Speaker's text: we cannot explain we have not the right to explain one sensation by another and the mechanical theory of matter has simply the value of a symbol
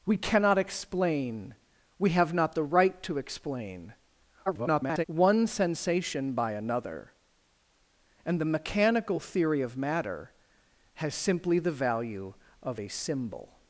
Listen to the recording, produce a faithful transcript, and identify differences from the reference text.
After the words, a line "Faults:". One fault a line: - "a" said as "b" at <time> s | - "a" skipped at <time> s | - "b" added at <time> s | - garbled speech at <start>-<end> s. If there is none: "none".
we cannot explain we have not the right to explain [garbled] one sensation by another and the mechanical theory of matter has simply the value of a symbol
Faults:
- garbled speech at 4.5-5.0 s